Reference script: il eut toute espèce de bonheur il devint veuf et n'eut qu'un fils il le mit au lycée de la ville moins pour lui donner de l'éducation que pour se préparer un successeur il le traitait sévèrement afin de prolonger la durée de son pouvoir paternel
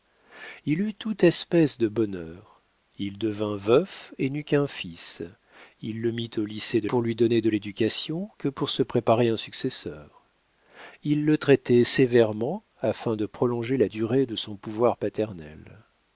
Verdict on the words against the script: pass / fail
fail